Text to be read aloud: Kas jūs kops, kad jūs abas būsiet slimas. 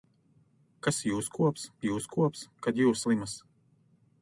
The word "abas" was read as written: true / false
false